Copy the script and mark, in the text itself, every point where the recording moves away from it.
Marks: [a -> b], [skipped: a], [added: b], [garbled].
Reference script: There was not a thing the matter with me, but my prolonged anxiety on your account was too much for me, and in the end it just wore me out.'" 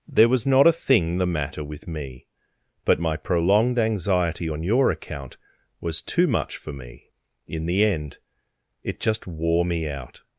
There was not a thing the matter with me, but my prolonged anxiety on your account was too much for me, [skipped: and] in the end it just wore me out.'"